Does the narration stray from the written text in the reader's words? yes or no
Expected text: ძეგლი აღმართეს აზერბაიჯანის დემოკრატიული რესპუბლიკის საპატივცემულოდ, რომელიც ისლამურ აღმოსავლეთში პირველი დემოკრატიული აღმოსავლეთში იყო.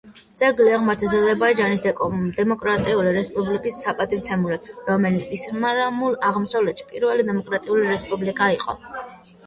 yes